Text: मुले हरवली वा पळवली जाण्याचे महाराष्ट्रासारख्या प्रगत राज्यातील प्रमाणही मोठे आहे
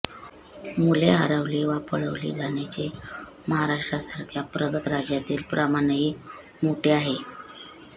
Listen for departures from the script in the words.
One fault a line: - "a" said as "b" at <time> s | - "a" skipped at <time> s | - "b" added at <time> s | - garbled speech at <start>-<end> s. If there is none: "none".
none